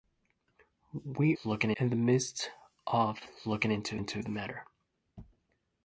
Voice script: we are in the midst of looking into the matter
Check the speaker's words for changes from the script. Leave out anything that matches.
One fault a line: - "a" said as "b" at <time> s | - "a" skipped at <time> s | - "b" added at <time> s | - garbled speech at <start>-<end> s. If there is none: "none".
- "are" said as "looking" at 1.4 s
- "into" added at 3.9 s